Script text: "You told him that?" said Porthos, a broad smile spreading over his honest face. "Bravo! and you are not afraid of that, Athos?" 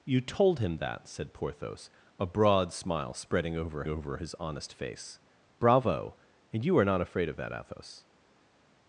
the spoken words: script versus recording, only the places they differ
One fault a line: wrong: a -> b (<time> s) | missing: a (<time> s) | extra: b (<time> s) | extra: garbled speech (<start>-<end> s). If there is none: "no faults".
extra: over (3.9 s)